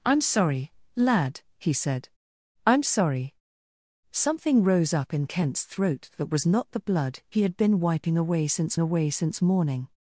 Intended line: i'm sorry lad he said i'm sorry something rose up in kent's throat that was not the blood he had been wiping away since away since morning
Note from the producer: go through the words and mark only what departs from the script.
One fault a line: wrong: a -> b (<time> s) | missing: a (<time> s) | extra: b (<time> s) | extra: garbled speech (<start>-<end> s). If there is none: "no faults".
no faults